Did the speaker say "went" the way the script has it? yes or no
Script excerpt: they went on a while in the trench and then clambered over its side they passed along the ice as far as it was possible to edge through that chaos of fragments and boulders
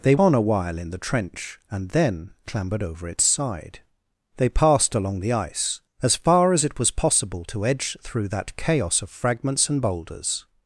no